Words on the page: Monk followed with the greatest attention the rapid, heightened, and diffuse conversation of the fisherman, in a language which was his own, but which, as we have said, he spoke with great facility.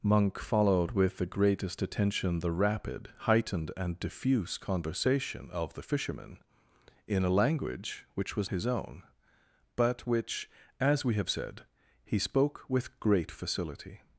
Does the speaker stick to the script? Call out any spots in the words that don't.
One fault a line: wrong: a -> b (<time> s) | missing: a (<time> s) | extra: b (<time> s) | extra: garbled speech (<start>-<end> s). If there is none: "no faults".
no faults